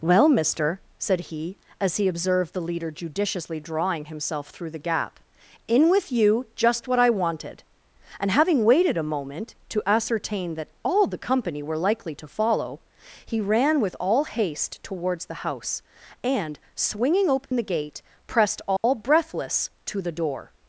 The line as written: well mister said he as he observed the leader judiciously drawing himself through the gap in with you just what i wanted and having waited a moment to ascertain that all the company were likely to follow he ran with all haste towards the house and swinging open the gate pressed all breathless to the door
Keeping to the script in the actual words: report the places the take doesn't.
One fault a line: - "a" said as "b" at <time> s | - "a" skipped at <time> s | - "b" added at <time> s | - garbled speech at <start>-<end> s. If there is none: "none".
none